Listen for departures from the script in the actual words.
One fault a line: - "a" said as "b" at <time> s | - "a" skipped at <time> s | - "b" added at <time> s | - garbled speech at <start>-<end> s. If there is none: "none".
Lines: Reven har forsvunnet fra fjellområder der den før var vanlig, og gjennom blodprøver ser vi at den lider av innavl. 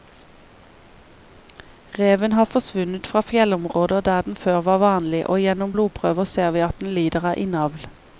none